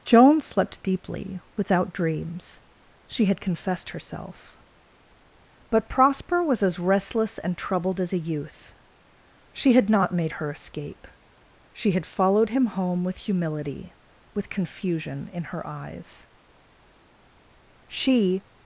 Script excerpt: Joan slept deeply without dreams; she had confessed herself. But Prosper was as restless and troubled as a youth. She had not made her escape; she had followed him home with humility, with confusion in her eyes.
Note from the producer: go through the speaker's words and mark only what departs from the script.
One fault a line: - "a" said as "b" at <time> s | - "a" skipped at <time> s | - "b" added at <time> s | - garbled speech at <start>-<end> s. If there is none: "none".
- "She" added at 17.9 s